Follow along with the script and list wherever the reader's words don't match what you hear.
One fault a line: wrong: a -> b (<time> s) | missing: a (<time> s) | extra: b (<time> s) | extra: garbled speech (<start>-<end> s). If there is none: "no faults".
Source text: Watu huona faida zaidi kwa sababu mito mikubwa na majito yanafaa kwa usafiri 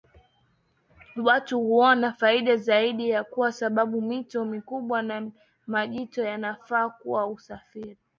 no faults